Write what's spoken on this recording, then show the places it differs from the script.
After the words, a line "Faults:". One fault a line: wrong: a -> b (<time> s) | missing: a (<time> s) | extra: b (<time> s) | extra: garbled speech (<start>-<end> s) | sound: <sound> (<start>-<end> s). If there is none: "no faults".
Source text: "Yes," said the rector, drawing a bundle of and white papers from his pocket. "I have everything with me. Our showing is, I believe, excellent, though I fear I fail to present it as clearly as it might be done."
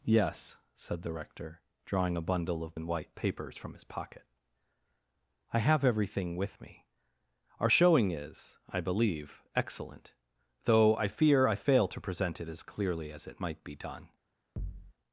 "Yes," said the rector, drawing a bundle of and white papers from his pocket. "I have everything with me. Our showing is, I believe, excellent, though I fear I fail to present it as clearly as it might be done."
Faults:
sound: thud (14.6-14.9 s)